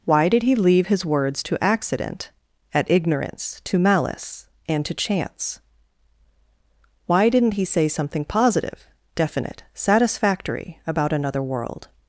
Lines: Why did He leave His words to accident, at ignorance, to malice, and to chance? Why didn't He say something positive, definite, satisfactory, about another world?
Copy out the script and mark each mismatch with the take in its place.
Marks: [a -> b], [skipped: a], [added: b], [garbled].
Why did He leave His words to accident, at ignorance, to malice, and to chance? Why didn't He say something positive, definite, satisfactory, about another world?